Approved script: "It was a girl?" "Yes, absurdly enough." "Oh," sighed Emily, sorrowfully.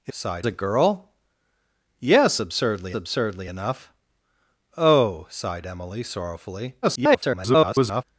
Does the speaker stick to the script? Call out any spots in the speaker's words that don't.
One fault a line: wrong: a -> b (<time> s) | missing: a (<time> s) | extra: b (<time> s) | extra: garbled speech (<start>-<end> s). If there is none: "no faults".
wrong: was -> sighed (0.1 s)
extra: absurdly (2.9 s)
extra: garbled speech (6.8-8.0 s)